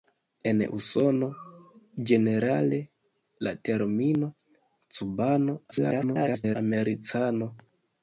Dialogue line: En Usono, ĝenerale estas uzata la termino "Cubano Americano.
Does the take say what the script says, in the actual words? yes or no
no